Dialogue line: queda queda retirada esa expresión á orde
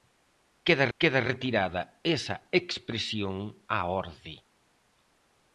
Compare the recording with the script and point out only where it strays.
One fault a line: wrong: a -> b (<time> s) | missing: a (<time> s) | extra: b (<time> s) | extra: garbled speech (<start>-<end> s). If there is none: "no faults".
no faults